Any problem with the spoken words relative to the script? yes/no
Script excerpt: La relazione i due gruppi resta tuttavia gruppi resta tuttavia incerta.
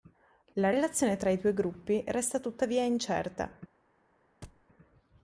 yes